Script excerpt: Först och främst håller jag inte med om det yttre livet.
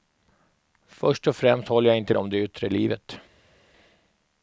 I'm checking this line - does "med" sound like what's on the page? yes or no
no